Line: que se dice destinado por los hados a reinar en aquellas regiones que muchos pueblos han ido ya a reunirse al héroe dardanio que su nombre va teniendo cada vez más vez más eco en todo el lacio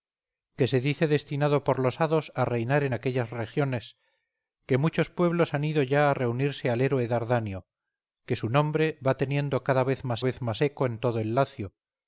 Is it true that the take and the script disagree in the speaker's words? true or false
false